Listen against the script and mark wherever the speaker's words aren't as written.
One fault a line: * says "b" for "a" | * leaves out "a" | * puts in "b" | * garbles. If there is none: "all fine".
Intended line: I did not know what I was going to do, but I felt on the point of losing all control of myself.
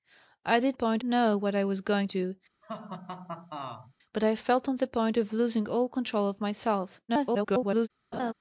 * says "point" for "not"
* leaves out "to"
* garbles